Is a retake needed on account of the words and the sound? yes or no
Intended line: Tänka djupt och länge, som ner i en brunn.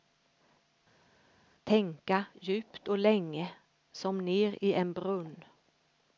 no